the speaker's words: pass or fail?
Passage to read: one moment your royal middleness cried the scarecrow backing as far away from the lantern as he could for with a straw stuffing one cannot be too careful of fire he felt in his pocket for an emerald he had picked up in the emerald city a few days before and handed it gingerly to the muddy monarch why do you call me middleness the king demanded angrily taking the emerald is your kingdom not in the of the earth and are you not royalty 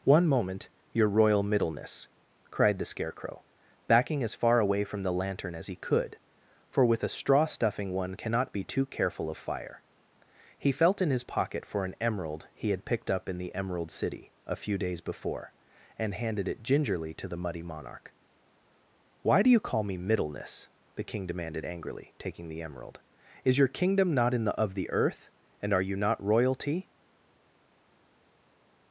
pass